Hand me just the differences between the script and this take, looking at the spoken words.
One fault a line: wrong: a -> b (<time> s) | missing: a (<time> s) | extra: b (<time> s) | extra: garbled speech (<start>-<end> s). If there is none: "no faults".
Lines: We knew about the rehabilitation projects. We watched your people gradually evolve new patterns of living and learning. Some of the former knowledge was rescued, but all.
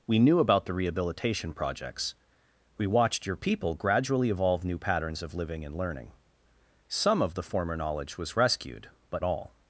no faults